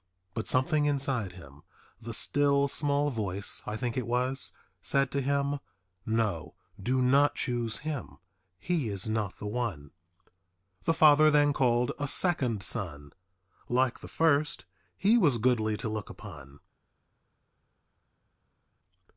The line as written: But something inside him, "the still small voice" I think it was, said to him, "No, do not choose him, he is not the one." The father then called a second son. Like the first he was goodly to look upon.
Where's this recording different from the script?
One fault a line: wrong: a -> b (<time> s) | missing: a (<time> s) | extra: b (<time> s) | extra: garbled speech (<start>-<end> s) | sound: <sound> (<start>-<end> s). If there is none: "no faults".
no faults